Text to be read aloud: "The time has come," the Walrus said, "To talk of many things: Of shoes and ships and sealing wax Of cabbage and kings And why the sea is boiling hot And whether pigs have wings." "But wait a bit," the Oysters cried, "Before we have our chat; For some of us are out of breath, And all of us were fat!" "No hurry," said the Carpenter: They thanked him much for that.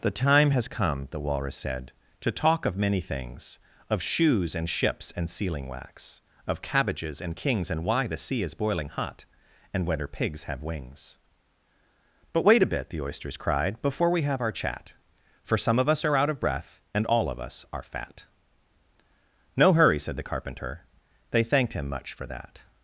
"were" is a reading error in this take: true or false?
true